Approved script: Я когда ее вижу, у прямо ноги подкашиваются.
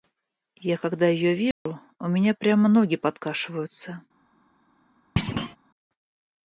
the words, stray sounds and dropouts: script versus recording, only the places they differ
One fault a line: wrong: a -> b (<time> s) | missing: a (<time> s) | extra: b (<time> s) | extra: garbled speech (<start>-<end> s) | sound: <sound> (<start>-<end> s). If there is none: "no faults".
sound: dropout (1.5-1.7 s)
extra: меня (2.1 s)
sound: thud (5.2-5.6 s)